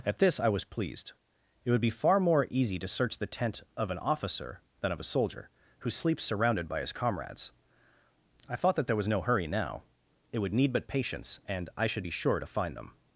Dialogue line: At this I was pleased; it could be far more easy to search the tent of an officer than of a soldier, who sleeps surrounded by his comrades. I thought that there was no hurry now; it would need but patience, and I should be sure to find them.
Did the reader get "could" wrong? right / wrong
wrong